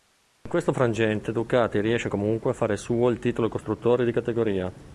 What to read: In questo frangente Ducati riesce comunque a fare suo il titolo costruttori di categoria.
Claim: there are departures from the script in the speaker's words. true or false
false